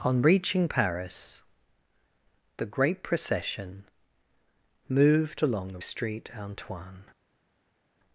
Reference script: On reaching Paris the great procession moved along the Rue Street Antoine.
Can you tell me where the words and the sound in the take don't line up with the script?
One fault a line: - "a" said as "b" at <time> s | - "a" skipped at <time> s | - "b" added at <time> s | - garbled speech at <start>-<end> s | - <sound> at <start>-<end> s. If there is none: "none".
- "Rue" skipped at 5.8 s